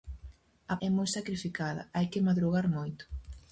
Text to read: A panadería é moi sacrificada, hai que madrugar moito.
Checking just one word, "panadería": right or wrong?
wrong